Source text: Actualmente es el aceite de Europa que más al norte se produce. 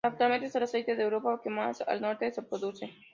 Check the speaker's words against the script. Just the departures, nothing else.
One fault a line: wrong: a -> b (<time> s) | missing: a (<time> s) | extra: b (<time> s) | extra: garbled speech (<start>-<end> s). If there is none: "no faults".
no faults